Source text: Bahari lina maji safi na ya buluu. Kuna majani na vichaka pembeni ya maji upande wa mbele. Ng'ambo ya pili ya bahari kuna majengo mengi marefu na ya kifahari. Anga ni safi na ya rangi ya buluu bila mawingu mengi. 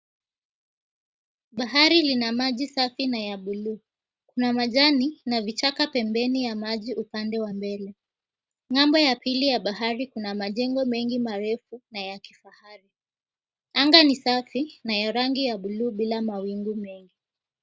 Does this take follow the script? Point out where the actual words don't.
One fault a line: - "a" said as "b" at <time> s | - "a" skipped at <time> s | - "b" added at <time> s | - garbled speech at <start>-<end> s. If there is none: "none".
none